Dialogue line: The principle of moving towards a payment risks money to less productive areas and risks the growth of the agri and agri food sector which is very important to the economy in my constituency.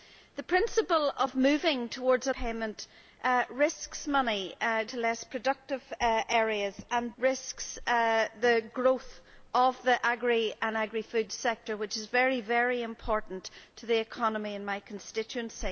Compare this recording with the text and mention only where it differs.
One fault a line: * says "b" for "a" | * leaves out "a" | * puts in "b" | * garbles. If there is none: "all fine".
all fine